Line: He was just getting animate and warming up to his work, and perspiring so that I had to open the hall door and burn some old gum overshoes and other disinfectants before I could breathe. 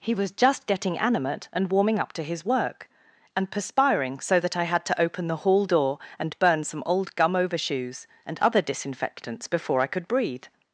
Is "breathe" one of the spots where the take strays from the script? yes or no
no